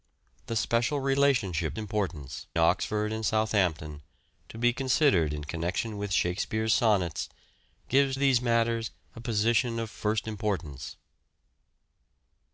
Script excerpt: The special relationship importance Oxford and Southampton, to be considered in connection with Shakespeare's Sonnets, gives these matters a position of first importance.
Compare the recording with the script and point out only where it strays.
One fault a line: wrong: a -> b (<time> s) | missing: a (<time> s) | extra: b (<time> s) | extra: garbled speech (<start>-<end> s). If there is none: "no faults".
no faults